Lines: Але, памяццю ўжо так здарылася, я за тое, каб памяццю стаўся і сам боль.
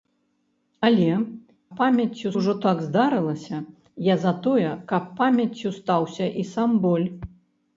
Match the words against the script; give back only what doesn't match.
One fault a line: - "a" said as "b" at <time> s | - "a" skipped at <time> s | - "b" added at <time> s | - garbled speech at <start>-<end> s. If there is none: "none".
none